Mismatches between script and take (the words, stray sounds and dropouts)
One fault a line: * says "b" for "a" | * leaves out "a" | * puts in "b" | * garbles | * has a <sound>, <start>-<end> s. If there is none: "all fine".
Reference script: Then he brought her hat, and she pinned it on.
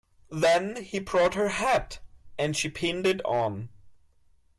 all fine